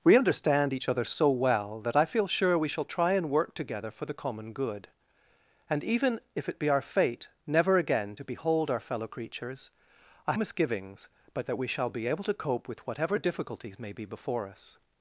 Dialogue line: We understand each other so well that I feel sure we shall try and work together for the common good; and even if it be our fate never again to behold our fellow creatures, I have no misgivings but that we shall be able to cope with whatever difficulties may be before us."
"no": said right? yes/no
no